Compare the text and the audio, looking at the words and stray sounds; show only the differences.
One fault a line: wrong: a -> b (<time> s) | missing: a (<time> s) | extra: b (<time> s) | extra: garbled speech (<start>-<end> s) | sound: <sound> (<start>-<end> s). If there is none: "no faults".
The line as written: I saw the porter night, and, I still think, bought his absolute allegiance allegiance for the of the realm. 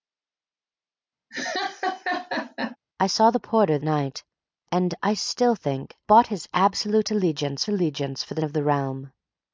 sound: laugh (1.3-2.8 s)